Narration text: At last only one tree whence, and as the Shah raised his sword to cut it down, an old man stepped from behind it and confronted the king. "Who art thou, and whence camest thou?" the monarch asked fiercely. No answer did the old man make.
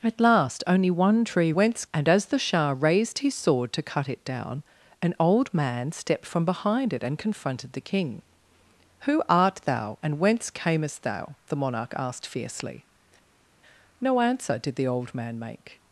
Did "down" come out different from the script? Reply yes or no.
no